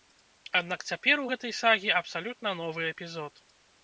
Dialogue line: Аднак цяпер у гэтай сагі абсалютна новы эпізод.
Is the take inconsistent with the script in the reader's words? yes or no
no